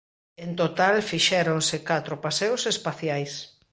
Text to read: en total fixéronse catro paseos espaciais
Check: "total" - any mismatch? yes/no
no